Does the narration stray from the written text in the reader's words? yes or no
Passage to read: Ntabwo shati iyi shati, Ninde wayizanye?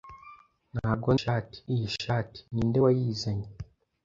no